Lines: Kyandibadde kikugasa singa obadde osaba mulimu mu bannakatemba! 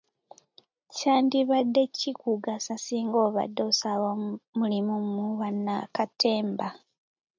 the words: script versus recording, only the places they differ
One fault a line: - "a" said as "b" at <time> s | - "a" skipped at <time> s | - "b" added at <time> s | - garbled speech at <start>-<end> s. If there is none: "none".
none